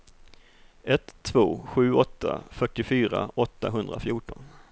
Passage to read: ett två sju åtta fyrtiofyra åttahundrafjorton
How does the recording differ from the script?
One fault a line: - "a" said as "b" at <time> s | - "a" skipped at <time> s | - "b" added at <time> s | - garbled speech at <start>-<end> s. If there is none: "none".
none